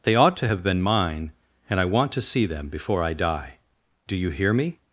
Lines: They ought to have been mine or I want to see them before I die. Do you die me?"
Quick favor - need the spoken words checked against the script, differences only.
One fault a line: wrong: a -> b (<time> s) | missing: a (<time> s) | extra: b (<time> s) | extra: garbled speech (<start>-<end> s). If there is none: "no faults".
wrong: or -> and (1.7 s)
wrong: die -> hear (4.3 s)